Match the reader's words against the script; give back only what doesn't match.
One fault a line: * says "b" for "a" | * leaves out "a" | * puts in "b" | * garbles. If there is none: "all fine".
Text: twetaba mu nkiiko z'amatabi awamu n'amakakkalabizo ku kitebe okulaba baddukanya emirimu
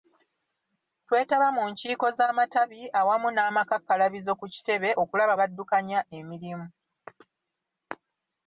all fine